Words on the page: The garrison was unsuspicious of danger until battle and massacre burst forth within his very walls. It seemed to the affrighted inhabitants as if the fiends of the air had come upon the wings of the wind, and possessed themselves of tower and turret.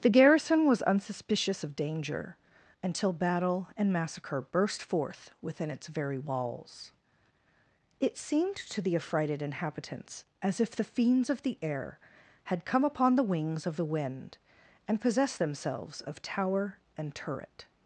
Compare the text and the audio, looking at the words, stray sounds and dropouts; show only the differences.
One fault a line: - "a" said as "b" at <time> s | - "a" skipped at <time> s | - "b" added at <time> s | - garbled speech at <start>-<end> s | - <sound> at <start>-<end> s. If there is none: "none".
- "his" said as "its" at 5.7 s